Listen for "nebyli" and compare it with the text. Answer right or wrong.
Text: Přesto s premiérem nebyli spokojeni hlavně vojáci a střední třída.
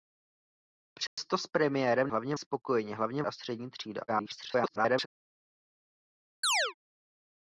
wrong